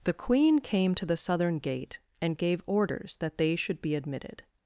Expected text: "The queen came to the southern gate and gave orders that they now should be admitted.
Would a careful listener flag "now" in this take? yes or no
yes